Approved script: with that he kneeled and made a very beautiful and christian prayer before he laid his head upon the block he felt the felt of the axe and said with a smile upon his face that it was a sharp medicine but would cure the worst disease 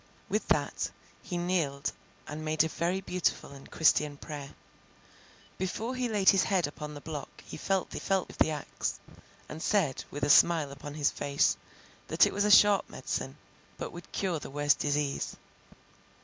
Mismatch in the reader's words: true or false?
false